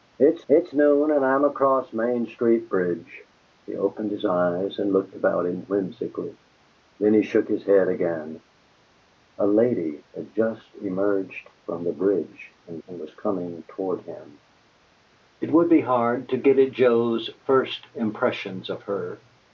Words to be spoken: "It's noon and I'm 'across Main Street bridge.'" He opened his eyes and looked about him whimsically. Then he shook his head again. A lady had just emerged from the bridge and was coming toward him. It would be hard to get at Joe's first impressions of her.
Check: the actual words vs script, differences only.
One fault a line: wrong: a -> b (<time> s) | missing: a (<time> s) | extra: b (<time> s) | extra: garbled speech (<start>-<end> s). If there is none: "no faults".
extra: it's (0.5 s)
extra: and (12.9 s)